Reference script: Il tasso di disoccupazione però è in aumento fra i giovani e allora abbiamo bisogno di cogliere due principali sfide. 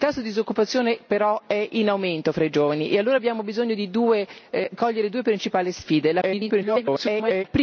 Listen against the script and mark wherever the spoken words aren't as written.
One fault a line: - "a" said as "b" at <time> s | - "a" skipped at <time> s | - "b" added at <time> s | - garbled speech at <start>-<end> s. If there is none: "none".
- garbled speech at 6.2-7.4 s